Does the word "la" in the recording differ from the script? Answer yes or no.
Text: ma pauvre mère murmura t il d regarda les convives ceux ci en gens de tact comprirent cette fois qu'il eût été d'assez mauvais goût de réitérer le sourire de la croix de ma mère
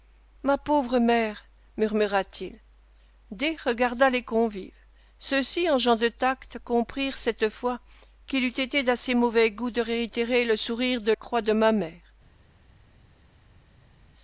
yes